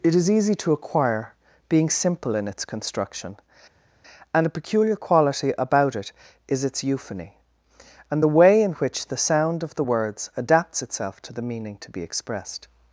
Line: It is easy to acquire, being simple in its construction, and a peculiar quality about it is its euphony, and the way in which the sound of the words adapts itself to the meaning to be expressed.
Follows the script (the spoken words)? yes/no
yes